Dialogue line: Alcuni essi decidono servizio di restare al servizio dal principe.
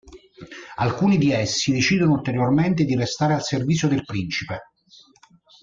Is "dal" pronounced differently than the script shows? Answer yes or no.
yes